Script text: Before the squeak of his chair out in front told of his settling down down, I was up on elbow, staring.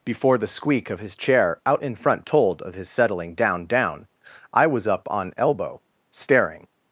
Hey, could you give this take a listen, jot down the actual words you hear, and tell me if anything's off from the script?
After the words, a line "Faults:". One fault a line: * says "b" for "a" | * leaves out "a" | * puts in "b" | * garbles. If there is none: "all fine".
Before the squeak of his chair out in front told of his settling down down, I was up on elbow, staring.
Faults:
all fine